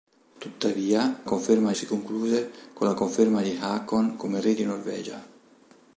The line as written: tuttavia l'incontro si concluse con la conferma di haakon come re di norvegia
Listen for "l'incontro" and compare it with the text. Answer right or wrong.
wrong